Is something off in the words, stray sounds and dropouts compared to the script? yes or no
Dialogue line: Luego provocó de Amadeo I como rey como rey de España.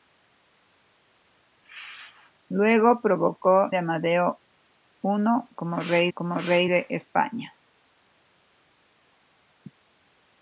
no